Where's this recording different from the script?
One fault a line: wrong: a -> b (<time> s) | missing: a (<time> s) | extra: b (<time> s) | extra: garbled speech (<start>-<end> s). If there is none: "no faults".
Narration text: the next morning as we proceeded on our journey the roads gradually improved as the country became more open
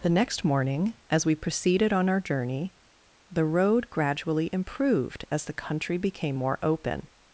wrong: roads -> road (3.5 s)